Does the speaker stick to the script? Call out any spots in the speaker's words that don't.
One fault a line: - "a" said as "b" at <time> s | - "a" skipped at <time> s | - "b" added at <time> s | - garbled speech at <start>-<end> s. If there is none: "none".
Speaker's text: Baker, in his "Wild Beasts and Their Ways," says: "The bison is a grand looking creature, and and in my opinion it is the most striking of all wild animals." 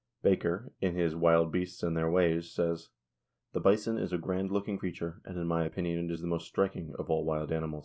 - "and" skipped at 5.4 s